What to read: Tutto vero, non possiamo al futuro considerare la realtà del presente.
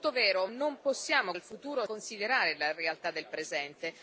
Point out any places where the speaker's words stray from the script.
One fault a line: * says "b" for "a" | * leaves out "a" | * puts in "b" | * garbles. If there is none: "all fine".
all fine